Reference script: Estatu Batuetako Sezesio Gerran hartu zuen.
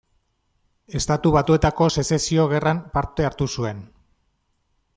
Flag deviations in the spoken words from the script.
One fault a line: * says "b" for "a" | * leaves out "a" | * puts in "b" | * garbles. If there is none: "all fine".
* puts in "parte"